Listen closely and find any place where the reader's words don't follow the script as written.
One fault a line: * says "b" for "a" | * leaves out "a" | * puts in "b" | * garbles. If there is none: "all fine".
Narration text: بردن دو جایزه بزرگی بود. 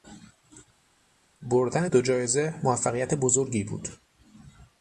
* puts in "موفقیت"